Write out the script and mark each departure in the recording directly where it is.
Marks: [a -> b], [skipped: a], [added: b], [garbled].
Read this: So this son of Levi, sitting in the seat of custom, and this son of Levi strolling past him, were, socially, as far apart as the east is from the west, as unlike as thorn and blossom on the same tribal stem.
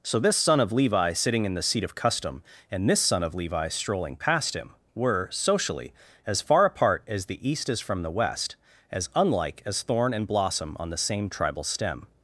So this son of Levi, sitting in the seat of custom, and this son of Levi strolling past him, were, socially, as far apart as the east is from the west, as unlike as thorn and blossom on the same tribal stem.